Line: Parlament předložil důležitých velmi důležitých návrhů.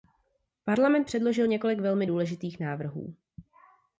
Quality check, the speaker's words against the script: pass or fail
fail